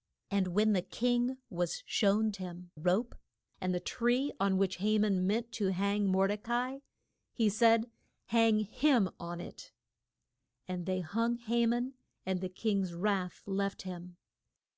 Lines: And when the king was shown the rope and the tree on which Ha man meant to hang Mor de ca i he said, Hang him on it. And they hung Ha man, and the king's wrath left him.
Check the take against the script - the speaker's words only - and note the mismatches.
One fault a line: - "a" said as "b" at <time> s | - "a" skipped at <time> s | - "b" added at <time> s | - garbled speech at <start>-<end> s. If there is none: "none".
- "the" said as "him" at 2.4 s